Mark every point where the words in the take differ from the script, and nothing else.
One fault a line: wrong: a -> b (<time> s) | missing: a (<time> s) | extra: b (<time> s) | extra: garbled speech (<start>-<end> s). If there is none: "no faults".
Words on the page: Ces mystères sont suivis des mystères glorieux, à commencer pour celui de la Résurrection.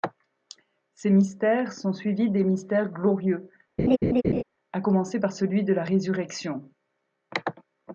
wrong: pour -> par (5.2 s)